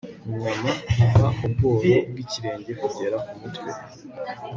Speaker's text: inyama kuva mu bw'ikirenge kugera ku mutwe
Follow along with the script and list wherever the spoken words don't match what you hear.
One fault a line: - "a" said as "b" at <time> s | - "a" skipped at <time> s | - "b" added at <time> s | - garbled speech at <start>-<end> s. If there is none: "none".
- "bworo" added at 1.5 s